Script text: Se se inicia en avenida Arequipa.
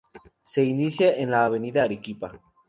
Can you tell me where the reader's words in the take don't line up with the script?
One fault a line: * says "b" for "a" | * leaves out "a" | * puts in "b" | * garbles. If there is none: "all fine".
* leaves out "se"
* puts in "la"